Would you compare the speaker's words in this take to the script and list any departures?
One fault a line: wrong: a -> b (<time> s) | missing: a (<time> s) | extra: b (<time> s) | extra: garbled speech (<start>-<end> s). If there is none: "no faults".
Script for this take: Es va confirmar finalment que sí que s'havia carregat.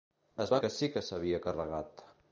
missing: confirmar finalment (0.6 s)